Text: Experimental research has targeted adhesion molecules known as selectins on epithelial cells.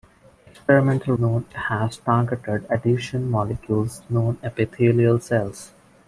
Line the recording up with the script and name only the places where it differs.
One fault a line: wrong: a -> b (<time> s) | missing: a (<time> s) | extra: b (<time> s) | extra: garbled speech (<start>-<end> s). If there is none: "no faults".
wrong: research -> known (1.2 s)
missing: as selectins on (4.4 s)